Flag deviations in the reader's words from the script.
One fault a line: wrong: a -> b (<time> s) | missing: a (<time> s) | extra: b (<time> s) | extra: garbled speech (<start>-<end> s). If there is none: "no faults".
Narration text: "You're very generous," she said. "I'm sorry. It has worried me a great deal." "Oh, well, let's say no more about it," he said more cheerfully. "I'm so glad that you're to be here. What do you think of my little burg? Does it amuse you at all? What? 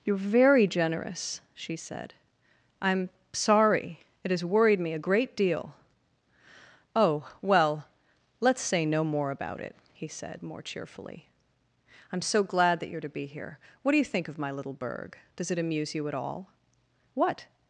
no faults